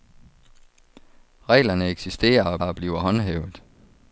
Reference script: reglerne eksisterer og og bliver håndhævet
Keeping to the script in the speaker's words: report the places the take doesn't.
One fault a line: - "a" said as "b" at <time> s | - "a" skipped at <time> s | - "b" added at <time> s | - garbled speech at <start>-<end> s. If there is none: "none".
none